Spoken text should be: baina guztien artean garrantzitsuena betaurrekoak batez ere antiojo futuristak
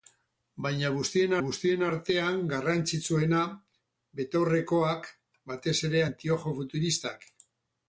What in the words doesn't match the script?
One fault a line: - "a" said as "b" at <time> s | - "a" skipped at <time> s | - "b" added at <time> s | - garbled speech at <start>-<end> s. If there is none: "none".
- "guztien" added at 1.4 s